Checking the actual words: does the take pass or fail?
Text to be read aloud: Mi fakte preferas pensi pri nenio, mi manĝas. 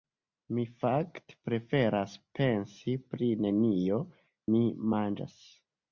pass